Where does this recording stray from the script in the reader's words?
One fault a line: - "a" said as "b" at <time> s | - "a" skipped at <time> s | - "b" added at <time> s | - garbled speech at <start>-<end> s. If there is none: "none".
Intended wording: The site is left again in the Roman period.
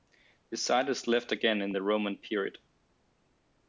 none